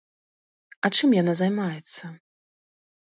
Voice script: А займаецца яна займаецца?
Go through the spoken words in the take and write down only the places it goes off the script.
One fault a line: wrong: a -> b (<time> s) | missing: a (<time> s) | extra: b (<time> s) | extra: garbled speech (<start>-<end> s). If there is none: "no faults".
wrong: займаецца -> чым (0.9 s)